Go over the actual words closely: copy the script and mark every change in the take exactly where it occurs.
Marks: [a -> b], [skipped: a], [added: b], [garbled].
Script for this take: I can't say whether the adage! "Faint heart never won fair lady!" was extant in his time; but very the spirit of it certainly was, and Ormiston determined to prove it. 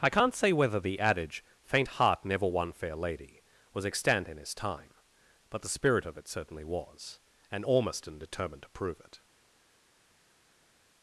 I can't say whether the adage! "Faint heart never won fair lady!" was extant in his time; but [skipped: very] the spirit of it certainly was, and Ormiston determined to prove it.